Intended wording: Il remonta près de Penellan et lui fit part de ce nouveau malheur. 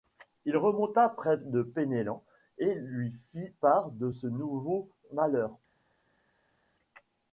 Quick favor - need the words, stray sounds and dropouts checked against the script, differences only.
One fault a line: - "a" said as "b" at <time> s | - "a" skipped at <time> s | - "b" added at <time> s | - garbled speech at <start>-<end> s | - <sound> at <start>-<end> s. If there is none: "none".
none